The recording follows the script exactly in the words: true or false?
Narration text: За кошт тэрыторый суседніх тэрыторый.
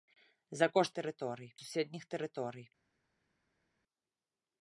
true